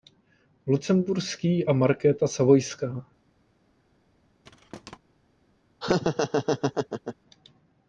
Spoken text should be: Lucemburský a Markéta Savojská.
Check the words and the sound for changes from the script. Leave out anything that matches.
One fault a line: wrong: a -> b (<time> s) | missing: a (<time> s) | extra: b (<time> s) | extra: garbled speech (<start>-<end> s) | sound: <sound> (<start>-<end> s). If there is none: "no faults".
sound: thud (4.4-5.0 s)
sound: laugh (5.8-7.2 s)